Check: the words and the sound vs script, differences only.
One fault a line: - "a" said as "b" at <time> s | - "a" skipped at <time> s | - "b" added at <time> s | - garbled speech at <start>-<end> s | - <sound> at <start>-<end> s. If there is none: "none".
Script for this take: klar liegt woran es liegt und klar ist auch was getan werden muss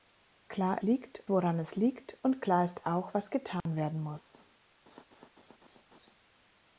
- dropout at 3.6-3.7 s
- laugh at 4.9-6.1 s